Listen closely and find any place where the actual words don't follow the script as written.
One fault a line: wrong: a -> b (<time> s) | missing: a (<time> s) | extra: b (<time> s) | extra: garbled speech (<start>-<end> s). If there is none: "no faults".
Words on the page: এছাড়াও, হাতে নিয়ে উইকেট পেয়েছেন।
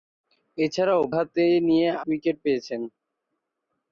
no faults